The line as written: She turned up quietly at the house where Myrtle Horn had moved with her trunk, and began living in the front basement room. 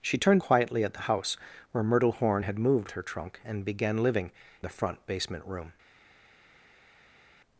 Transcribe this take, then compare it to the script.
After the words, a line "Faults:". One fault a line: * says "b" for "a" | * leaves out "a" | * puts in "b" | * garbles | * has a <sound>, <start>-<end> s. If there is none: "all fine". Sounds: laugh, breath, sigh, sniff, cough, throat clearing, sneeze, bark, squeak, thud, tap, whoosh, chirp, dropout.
She turned quietly at the house where Myrtle Horn had moved her trunk, and began living the front basement room.
Faults:
* leaves out "up"
* leaves out "with"
* leaves out "in"